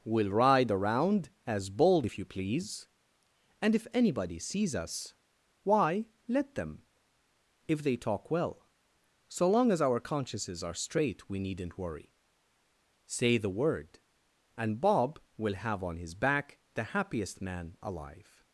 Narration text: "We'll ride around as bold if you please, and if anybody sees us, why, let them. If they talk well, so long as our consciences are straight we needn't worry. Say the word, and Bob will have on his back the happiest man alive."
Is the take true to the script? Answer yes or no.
yes